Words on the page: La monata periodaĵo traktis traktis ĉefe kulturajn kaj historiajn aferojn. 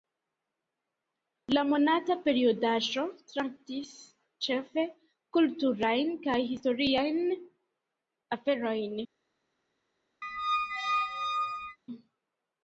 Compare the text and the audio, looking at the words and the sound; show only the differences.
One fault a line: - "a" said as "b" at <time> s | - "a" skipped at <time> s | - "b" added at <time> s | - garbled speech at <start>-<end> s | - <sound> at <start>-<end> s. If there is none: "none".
- "traktis" skipped at 3.9 s
- squeak at 10.2-11.8 s